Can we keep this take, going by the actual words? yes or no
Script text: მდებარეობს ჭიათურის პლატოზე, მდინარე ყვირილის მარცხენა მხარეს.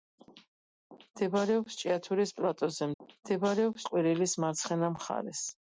no